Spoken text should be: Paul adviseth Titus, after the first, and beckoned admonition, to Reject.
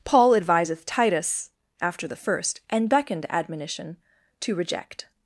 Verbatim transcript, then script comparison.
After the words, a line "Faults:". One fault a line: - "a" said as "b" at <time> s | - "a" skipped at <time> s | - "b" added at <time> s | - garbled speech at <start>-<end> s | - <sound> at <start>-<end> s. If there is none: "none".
Paul adviseth Titus, after the first, and beckoned admonition, to Reject.
Faults:
none